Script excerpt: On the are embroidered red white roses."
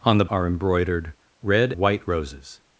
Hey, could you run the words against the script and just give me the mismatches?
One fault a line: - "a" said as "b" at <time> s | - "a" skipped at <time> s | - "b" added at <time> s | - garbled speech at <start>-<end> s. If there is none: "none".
none